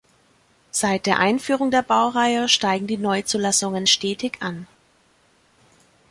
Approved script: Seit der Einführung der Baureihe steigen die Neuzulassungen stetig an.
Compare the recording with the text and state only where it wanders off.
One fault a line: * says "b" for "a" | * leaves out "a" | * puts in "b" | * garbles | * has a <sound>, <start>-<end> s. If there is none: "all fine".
all fine